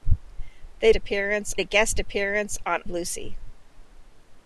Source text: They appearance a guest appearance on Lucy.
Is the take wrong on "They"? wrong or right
right